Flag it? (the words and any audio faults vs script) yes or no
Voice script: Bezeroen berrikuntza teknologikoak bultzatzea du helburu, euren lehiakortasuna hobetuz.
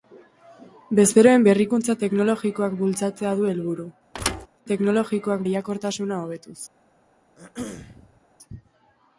yes